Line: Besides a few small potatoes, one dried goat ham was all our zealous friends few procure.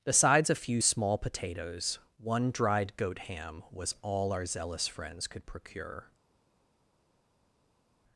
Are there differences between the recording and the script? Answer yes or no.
yes